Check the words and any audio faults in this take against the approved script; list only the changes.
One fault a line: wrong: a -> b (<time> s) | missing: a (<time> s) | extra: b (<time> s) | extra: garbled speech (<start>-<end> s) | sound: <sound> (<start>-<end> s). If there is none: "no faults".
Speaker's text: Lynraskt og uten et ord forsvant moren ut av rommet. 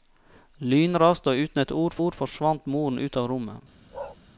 extra: ord (2.0 s)
sound: bark (3.9-4.2 s)